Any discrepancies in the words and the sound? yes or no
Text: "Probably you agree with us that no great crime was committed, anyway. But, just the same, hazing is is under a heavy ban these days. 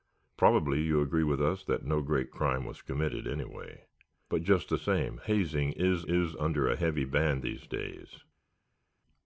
no